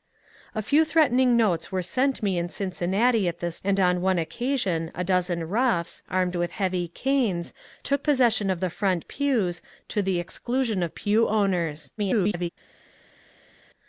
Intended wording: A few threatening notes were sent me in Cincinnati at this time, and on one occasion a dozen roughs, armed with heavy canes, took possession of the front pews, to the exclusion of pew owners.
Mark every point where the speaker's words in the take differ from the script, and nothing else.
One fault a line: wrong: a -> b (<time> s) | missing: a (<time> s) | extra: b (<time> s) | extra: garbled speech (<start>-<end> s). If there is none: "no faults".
missing: time (3.6 s)
extra: garbled speech (12.0-12.5 s)